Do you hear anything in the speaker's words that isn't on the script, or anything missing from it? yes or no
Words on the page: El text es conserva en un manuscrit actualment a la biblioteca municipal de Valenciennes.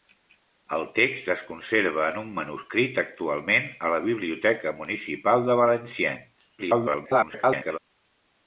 yes